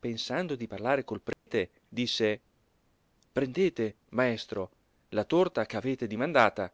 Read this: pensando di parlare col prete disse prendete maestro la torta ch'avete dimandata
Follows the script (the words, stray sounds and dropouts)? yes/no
no